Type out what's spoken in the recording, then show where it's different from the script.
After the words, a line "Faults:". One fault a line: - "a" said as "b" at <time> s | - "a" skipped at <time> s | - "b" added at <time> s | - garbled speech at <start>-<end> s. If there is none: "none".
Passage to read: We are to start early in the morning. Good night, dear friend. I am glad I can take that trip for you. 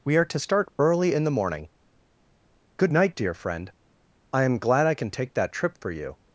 We are to start early in the morning. Good night, dear friend. I am glad I can take that trip for you.
Faults:
none